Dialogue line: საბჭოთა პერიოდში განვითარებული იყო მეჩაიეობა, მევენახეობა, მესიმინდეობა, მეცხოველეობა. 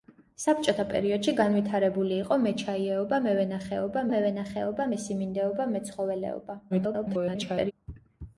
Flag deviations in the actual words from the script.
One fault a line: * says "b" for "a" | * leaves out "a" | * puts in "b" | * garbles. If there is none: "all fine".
* puts in "მევენახეობა"
* garbles